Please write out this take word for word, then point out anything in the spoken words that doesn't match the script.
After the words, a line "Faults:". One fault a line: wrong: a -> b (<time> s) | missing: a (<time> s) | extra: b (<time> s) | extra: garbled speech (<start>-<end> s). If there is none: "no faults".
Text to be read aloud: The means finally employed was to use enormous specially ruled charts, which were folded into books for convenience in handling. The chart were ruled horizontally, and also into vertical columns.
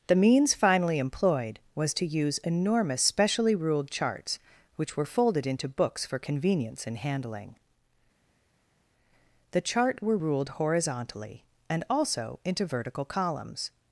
The means finally employed was to use enormous specially ruled charts, which were folded into books for convenience in handling. The chart were ruled horizontally, and also into vertical columns.
Faults:
no faults